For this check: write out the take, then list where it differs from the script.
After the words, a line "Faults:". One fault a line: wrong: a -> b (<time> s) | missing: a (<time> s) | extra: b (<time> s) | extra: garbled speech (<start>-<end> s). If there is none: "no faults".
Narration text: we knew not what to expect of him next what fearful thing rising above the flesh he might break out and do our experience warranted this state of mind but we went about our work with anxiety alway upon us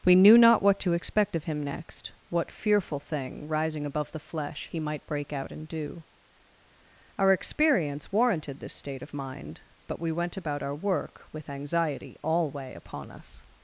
we knew not what to expect of him next what fearful thing rising above the flesh he might break out and do our experience warranted this state of mind but we went about our work with anxiety alway upon us
Faults:
no faults